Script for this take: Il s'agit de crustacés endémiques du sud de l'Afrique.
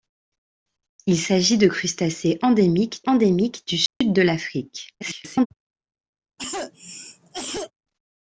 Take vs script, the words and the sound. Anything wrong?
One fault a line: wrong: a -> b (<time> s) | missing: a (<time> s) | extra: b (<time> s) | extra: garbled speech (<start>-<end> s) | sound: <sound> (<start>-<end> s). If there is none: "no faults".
extra: endémiques (3.1 s)
sound: dropout (3.9-4.0 s)
extra: garbled speech (5.0-5.5 s)
sound: cough (6.4-7.7 s)